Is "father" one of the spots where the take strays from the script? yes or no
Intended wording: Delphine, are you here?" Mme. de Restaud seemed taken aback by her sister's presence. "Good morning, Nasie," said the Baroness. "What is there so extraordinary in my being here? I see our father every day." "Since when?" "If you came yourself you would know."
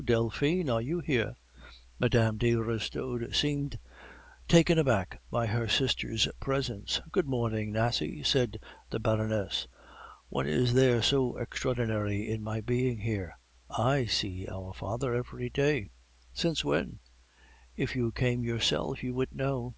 no